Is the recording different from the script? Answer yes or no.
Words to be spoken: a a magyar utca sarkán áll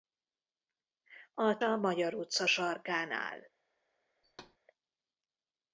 no